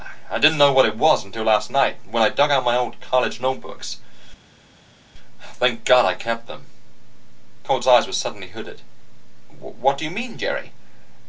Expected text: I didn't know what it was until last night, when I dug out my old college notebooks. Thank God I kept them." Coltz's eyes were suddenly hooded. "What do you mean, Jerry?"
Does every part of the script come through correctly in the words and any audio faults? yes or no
yes